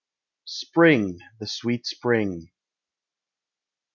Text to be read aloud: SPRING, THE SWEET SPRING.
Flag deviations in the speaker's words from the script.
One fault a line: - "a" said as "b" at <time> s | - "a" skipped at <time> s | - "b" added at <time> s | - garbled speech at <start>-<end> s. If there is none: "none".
none